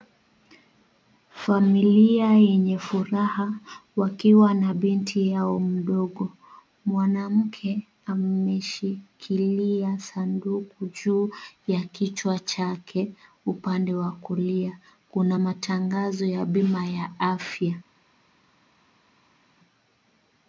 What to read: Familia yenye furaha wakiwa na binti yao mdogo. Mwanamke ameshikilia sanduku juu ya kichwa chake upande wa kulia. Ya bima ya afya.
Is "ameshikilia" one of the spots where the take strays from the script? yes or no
no